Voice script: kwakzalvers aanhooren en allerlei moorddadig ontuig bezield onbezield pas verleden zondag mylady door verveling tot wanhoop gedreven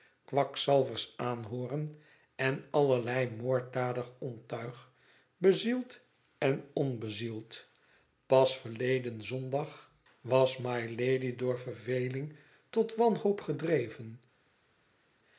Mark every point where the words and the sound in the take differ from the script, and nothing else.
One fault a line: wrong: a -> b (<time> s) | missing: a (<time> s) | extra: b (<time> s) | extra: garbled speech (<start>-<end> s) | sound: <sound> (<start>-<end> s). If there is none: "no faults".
extra: en (6.4 s)
extra: was (10.2 s)